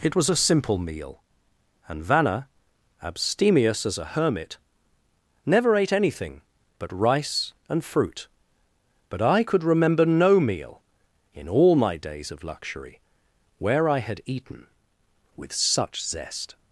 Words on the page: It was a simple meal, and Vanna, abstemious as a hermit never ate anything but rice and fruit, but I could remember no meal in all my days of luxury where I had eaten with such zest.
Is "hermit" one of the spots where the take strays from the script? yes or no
no